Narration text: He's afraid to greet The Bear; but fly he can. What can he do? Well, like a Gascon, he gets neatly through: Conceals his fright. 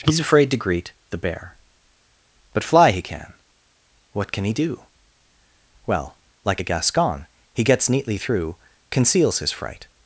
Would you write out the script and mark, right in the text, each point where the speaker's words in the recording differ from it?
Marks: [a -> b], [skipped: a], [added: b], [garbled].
He's afraid to greet The Bear; but fly he can. What can he do? Well, like a Gascon, he gets neatly through: Conceals his fright.